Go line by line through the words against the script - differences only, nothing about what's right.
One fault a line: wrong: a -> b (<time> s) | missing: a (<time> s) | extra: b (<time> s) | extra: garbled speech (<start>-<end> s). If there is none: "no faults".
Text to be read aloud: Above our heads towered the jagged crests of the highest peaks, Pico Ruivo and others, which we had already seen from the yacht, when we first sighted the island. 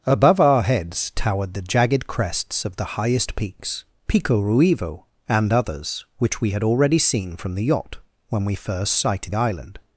missing: the (9.3 s)